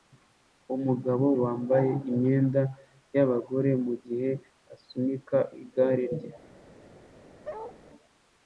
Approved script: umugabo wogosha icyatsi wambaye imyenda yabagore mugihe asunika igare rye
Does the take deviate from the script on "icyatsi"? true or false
true